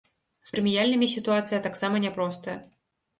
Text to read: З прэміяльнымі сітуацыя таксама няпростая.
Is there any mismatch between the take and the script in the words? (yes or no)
no